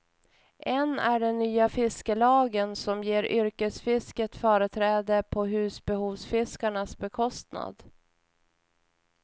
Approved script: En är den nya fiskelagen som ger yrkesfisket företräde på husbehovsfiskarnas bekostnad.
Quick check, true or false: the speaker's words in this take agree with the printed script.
true